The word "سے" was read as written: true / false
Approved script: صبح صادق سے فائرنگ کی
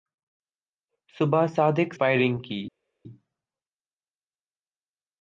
false